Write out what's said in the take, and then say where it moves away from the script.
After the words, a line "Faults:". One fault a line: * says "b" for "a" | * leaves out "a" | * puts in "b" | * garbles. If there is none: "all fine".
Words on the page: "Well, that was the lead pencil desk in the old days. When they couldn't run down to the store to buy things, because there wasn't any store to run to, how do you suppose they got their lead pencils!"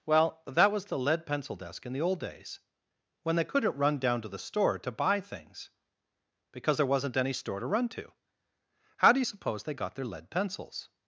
"Well, that was the lead pencil desk in the old days. When they couldn't run down to the store to buy things, because there wasn't any store to run to, how do you suppose they got their lead pencils!"
Faults:
all fine